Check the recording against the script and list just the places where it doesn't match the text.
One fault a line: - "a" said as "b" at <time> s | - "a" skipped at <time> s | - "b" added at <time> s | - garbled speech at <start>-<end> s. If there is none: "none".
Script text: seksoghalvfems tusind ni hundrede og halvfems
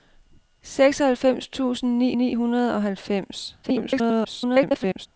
- "ni" added at 2.2 s
- garbled speech at 3.6-5.1 s